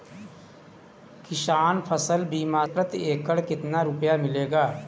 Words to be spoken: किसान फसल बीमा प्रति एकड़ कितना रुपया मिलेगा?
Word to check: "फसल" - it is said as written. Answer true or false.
true